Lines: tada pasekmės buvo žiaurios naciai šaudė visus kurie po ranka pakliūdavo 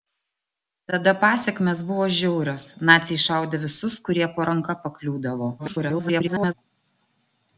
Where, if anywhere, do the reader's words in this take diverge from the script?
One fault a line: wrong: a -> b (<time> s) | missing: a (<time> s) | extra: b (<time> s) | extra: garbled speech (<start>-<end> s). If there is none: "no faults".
extra: garbled speech (5.6-6.5 s)